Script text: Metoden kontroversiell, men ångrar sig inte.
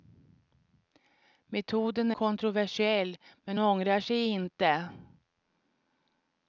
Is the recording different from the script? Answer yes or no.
no